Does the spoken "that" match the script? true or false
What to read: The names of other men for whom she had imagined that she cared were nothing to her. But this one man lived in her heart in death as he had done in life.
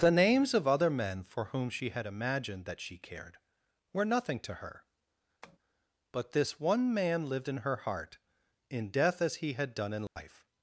true